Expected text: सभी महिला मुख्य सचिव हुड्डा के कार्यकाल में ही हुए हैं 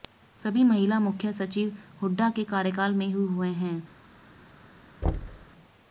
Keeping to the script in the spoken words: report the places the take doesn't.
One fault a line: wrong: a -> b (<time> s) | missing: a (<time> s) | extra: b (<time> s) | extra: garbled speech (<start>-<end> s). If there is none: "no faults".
no faults